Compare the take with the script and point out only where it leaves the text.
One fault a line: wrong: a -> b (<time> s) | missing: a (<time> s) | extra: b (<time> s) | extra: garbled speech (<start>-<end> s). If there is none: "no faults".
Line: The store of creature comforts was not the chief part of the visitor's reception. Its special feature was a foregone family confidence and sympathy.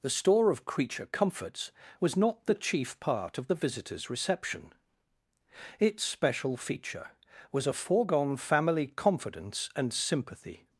no faults